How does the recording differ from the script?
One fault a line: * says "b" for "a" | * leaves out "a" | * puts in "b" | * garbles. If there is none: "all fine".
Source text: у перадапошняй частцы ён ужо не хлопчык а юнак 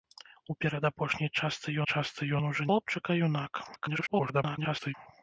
* puts in "частцы"
* leaves out "не"
* garbles